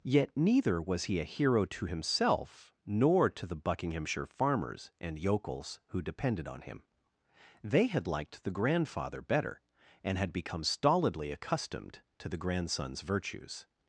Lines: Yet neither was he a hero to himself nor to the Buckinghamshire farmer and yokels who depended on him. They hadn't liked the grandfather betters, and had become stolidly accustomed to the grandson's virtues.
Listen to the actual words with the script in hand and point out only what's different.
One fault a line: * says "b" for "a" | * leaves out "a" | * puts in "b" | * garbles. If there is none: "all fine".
* says "farmers" for "farmer"
* says "had" for "hadn't"
* says "better" for "betters"